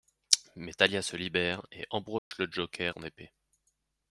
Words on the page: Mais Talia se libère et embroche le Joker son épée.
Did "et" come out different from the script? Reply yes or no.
no